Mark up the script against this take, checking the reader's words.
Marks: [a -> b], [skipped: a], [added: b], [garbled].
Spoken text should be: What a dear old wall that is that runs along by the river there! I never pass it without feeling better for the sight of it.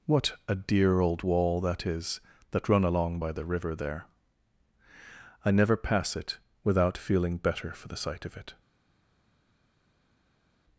What a dear old wall that is that [runs -> run] along by the river there! I never pass it without feeling better for the sight of it.